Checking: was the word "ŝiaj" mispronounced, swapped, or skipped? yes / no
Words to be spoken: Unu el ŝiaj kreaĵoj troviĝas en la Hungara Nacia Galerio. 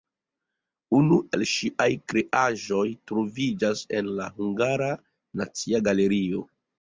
no